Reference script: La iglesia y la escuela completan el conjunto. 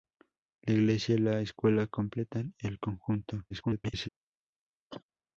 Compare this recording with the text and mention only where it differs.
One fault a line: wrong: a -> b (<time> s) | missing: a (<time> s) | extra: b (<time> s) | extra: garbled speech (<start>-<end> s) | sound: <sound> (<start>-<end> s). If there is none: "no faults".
extra: garbled speech (3.5-4.1 s)
sound: cough (4.9-5.0 s)